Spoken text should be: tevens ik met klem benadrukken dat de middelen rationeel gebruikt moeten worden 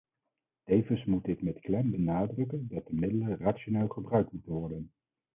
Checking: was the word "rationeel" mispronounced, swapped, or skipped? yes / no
no